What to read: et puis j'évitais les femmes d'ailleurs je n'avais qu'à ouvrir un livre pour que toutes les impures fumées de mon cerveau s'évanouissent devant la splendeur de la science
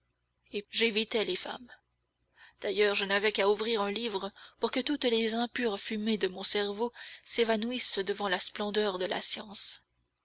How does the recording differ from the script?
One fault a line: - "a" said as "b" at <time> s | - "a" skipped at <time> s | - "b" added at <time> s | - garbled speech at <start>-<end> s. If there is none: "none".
- "puis" skipped at 0.6 s